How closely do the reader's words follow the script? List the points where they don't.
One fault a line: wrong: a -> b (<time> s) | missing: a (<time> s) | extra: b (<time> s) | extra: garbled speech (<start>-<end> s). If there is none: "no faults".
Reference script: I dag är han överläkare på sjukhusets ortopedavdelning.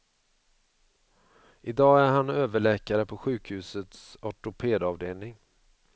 no faults